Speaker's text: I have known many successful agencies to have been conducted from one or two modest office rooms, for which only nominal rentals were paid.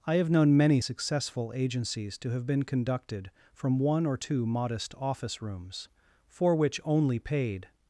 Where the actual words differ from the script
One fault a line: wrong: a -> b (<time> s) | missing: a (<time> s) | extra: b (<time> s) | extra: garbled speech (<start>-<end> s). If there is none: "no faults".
missing: nominal rentals were (7.2 s)